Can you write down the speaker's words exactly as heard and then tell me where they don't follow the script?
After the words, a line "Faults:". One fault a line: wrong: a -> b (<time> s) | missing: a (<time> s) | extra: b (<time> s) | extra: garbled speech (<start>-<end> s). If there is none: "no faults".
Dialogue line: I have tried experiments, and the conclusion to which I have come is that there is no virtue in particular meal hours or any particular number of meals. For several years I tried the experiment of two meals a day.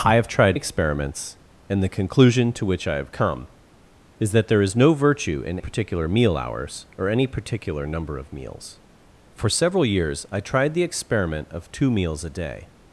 I have tried experiments, and the conclusion to which I have come is that there is no virtue in particular meal hours or any particular number of meals. For several years I tried the experiment of two meals a day.
Faults:
no faults